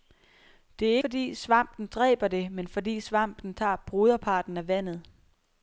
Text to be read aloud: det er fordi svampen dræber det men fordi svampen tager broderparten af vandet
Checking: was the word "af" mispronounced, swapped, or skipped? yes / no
no